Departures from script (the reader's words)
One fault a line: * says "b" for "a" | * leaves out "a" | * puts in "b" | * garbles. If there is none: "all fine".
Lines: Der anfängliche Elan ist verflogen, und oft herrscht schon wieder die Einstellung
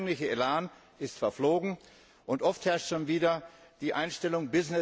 all fine